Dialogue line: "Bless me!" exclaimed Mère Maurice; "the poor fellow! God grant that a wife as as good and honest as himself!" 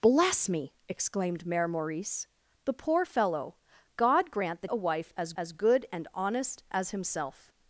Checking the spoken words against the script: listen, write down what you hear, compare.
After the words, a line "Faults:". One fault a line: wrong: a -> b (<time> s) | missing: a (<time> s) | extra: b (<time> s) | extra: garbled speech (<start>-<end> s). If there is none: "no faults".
"Bless me!" exclaimed Mère Maurice; "the poor fellow! God grant that a wife as as good and honest as himself!"
Faults:
no faults